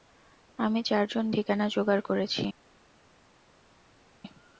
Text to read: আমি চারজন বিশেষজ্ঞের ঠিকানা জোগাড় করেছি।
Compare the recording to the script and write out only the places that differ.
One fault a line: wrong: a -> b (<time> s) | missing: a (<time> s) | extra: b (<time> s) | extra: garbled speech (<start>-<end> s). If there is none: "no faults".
missing: বিশেষজ্ঞের (1.2 s)